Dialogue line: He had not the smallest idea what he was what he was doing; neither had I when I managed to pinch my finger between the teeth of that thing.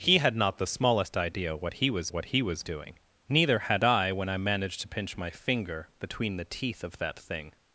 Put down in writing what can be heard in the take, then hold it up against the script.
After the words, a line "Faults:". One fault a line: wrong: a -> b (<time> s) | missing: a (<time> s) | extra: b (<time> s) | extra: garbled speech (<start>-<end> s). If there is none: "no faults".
He had not the smallest idea what he was what he was doing; neither had I when I managed to pinch my finger between the teeth of that thing.
Faults:
no faults